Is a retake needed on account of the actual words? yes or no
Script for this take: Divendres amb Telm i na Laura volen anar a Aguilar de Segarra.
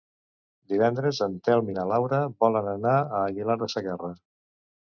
yes